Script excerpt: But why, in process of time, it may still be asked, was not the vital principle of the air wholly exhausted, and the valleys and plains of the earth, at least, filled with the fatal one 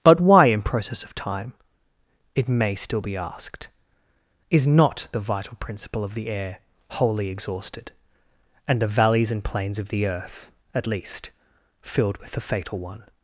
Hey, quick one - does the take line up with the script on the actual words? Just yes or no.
no